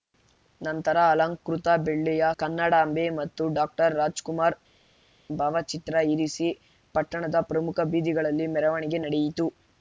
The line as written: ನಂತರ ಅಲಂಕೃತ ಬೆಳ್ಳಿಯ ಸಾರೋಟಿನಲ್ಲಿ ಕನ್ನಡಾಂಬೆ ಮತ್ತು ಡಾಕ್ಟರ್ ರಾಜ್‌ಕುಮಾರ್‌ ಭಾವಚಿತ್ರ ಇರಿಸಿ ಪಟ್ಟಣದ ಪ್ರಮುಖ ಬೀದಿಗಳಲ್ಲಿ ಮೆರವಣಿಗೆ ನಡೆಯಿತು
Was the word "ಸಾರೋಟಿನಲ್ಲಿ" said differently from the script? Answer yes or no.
yes